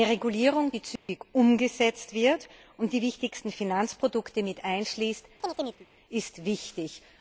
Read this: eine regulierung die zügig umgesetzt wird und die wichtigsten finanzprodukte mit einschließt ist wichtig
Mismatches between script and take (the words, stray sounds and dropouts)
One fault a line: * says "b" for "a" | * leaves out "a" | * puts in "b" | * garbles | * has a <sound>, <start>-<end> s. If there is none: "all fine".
* has a dropout, 1.0-1.1 s
* has a chirp, 5.4-5.9 s